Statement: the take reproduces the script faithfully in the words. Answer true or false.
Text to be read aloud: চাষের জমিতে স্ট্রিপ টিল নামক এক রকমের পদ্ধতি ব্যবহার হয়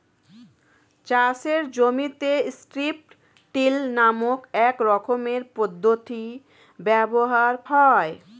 true